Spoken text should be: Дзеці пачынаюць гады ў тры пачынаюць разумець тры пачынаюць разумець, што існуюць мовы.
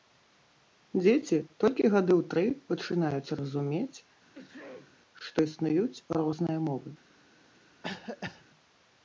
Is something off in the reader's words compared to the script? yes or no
yes